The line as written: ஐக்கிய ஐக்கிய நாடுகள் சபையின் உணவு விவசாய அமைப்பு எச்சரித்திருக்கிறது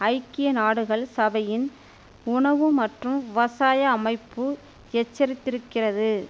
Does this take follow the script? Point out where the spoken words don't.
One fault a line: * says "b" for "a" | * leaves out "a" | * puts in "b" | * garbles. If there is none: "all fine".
* leaves out "ஐக்கிய"
* puts in "மற்றும்"